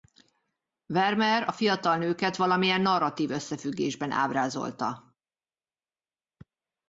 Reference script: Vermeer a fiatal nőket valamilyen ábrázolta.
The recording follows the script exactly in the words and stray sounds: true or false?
false